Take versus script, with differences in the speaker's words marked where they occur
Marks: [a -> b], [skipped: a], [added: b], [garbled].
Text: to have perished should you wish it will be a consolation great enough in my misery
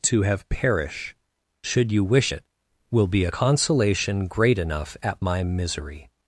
to have [perished -> perish] should you wish it will be a consolation great enough [in -> at] my misery